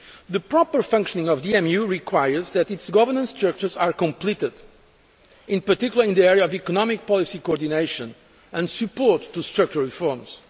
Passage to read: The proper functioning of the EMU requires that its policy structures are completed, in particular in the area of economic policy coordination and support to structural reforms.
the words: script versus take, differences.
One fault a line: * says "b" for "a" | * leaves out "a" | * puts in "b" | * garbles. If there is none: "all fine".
* says "governance" for "policy"